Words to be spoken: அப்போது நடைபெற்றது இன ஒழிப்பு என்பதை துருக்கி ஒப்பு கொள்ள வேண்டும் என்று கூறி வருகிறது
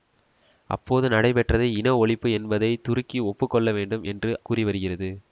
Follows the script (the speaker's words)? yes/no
yes